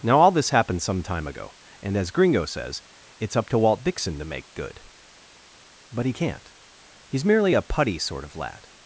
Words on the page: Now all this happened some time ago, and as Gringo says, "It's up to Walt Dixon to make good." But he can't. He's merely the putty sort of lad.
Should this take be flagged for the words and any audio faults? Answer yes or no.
yes